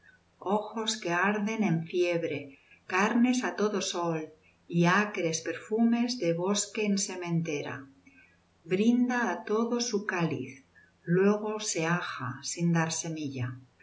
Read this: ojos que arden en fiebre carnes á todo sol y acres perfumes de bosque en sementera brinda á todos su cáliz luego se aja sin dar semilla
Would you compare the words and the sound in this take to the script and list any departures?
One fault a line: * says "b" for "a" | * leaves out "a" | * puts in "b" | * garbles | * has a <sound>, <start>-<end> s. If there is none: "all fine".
all fine